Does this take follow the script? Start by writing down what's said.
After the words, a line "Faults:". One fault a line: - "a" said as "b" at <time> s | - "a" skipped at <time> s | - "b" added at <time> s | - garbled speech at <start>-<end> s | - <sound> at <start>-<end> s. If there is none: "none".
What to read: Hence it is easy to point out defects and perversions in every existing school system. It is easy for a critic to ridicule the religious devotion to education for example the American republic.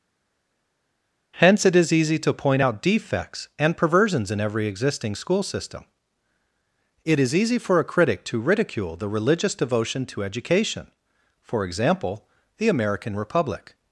Hence it is easy to point out defects and perversions in every existing school system. It is easy for a critic to ridicule the religious devotion to education for example the American republic.
Faults:
none